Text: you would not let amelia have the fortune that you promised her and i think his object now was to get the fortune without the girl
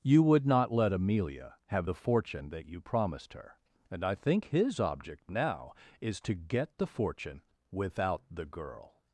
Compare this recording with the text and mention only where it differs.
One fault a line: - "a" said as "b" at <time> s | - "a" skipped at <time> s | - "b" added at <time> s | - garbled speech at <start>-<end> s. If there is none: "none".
- "was" said as "is" at 6.0 s